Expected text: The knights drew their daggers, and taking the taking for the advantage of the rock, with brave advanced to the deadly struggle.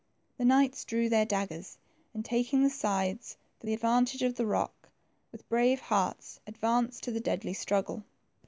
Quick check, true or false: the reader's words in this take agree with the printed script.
false